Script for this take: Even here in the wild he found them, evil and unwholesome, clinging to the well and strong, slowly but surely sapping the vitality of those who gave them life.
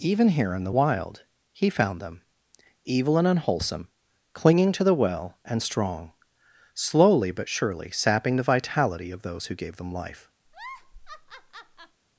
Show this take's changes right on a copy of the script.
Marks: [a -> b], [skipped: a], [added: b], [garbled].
Even here in the wild he found them, evil and unwholesome, clinging to the well and strong, slowly but surely sapping the vitality of those who gave them life.